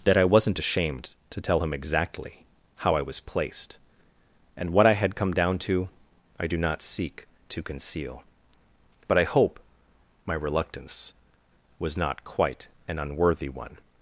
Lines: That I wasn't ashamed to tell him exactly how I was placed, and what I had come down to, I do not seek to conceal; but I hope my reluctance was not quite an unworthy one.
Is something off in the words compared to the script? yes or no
no